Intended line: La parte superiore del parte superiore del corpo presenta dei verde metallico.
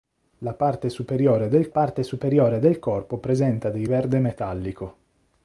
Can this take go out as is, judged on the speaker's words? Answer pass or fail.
pass